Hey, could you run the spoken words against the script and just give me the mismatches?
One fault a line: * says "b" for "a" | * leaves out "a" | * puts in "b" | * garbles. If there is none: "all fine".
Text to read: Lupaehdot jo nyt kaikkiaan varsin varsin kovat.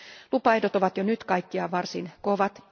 * puts in "ovat"
* leaves out "varsin"